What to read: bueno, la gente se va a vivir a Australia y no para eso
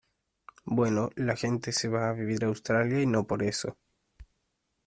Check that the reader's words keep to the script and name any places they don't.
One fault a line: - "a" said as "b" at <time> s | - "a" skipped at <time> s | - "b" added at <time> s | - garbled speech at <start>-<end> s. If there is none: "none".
- "para" said as "por" at 3.3 s